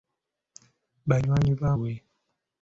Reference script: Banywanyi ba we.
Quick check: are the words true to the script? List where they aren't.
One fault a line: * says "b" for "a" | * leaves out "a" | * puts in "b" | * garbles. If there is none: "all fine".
all fine